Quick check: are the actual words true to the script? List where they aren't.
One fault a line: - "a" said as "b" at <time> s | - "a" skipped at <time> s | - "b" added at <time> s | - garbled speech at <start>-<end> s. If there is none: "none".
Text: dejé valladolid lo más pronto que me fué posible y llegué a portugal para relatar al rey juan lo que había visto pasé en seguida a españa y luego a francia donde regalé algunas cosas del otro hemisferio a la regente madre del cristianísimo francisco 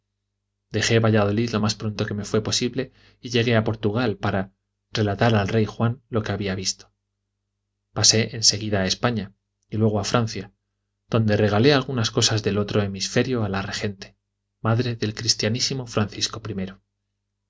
none